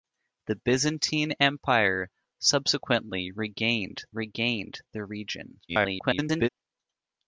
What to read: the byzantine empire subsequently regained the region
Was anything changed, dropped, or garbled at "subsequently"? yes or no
no